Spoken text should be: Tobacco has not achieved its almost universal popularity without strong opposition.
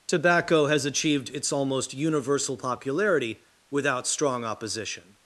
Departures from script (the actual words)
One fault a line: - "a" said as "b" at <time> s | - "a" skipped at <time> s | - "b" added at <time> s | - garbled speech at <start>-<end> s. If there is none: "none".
- "not" skipped at 0.8 s